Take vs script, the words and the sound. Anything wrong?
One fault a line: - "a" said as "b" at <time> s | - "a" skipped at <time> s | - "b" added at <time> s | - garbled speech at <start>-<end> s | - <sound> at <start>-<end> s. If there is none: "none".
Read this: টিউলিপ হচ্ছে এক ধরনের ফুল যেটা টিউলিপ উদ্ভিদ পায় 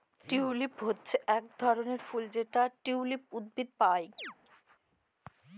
- chirp at 4.2-4.3 s